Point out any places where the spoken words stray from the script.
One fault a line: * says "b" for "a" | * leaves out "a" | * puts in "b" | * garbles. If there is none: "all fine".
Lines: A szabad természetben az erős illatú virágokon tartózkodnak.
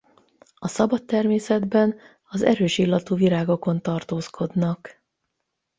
all fine